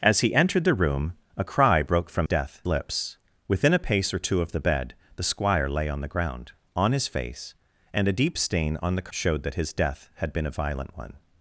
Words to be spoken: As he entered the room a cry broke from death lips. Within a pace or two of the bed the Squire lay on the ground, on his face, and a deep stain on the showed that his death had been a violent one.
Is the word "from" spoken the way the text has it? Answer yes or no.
yes